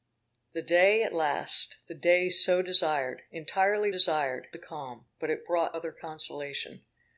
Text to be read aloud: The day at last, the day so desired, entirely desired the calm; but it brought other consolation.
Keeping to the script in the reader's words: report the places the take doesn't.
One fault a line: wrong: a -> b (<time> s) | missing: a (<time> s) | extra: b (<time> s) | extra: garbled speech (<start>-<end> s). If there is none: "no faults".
no faults